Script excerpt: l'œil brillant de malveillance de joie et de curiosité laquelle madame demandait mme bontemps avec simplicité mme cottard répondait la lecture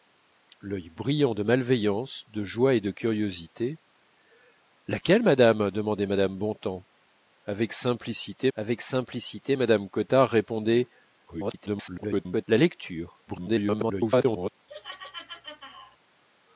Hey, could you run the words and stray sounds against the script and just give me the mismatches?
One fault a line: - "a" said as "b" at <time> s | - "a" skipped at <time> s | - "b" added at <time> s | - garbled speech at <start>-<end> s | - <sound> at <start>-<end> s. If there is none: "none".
- "avec simplicité" added at 8.5 s
- garbled speech at 11.3-12.5 s
- garbled speech at 13.3-14.5 s
- laugh at 14.7-16.0 s